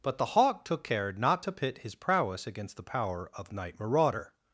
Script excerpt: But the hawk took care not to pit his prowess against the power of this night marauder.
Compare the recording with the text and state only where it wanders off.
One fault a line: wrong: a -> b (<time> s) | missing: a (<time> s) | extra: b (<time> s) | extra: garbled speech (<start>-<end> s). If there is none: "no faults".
missing: this (3.5 s)